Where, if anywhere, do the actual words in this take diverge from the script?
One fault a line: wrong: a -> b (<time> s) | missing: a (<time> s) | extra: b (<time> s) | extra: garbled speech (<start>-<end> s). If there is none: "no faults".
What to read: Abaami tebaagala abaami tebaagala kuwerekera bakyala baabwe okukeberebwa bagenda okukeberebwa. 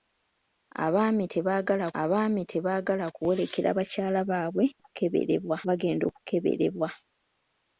no faults